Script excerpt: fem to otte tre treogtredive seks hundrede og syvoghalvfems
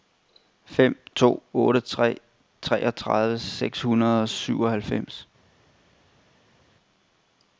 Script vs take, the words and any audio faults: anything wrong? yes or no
no